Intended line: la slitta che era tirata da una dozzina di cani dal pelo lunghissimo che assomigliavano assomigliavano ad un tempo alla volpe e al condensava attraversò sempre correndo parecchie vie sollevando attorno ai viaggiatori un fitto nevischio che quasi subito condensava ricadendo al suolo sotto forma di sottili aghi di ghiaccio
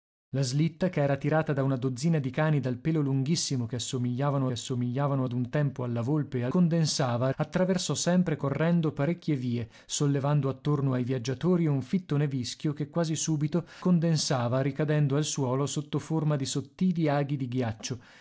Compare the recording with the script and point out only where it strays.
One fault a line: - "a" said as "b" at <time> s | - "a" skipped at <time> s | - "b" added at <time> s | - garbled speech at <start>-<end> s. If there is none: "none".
none